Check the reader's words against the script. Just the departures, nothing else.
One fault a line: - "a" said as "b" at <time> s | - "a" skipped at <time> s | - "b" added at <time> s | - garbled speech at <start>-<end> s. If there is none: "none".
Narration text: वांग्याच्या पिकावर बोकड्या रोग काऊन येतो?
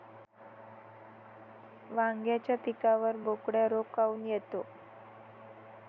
none